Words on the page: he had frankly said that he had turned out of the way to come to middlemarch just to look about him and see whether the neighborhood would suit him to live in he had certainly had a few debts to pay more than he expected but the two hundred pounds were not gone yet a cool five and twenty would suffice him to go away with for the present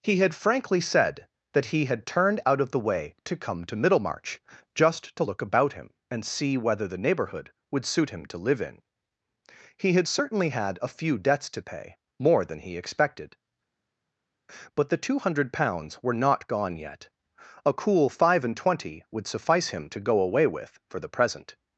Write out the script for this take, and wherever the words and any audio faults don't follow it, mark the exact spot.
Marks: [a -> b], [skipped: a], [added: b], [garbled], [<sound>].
he had frankly said that he had turned out of the way to come to middlemarch just to look about him and see whether the neighborhood would suit him to live in he had certainly had a few debts to pay more than he expected but the two hundred pounds were not gone yet a cool five and twenty would suffice him to go away with for the present